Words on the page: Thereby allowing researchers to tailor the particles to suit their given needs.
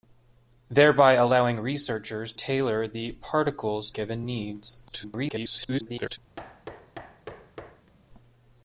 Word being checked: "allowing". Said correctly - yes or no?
yes